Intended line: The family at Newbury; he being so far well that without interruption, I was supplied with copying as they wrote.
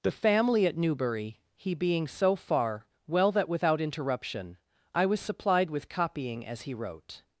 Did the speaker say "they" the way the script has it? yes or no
no